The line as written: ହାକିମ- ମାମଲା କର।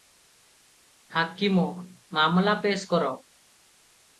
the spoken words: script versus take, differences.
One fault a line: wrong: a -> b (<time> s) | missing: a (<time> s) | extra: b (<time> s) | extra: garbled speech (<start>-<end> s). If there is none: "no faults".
extra: ପେଶ୍ (2.6 s)